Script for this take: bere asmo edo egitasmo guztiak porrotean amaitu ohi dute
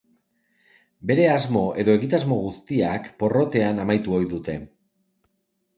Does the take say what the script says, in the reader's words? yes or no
yes